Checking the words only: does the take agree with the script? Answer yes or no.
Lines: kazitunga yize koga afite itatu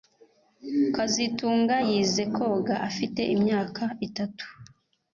no